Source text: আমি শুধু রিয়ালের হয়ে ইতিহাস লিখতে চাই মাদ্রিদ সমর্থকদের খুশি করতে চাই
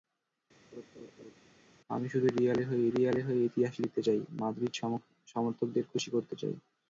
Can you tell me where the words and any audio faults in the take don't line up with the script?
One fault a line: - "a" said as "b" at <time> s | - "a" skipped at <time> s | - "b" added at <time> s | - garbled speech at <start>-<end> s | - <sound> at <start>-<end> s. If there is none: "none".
- laugh at 0.7-1.4 s
- "রিয়ালের হয়ে" added at 2.9 s